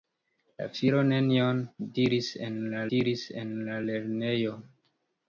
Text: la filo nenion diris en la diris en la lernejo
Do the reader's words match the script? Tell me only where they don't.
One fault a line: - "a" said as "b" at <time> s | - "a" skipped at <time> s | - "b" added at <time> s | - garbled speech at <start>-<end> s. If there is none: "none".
none